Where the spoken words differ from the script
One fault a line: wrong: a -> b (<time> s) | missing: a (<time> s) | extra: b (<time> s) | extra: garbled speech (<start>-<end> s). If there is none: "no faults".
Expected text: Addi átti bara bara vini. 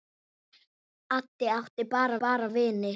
no faults